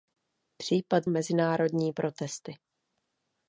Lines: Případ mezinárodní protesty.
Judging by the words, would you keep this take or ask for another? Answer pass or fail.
pass